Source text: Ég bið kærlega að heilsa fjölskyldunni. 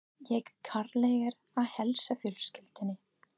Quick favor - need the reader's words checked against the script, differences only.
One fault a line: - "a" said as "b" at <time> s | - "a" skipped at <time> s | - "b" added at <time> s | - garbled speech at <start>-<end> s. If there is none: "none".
- "bið" skipped at 0.5 s